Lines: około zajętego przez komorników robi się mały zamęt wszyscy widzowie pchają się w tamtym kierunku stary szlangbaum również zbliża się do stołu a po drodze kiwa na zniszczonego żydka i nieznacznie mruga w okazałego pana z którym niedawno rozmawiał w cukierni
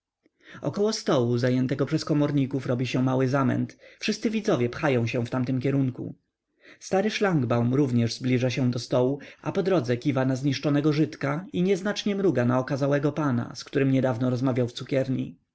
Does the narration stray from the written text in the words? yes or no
yes